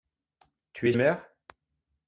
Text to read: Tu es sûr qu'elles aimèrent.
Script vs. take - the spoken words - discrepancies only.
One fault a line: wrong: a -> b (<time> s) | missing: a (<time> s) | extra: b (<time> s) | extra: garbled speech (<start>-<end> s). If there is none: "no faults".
missing: sûr qu'elles (0.9 s)